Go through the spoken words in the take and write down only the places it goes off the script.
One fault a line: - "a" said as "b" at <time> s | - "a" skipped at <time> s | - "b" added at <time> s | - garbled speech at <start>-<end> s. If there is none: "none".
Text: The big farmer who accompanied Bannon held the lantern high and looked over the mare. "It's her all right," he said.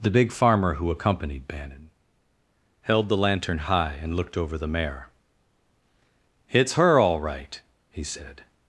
none